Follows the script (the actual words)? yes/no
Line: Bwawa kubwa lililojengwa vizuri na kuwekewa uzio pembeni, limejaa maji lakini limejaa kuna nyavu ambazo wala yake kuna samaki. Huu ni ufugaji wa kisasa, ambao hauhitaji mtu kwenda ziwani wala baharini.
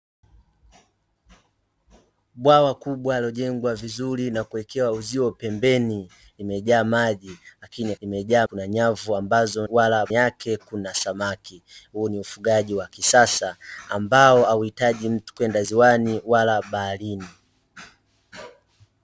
yes